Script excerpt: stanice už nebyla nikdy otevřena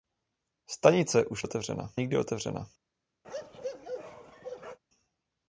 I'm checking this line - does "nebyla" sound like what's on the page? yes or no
no